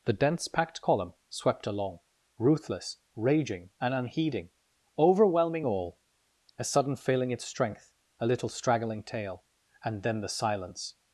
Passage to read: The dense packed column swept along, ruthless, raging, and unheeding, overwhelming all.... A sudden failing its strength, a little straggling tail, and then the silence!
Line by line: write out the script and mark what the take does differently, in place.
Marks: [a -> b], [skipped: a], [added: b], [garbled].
The dense packed column swept along, ruthless, raging, and unheeding, overwhelming all.... A sudden failing its strength, a little straggling tail, and then the silence!